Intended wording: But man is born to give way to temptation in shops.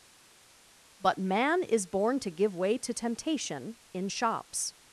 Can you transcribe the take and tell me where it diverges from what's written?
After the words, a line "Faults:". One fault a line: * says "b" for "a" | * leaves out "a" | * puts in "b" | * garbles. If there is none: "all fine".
But man is born to give way to temptation in shops.
Faults:
all fine